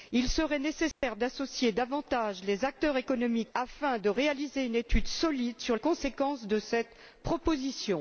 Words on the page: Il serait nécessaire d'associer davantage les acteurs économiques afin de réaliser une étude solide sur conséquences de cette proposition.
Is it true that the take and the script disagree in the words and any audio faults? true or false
true